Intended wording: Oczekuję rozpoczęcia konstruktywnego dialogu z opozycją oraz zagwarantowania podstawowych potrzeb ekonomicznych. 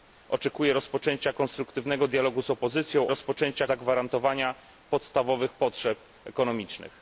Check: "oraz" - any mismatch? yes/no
yes